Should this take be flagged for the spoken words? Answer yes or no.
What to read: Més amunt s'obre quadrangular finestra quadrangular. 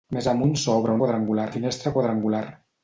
no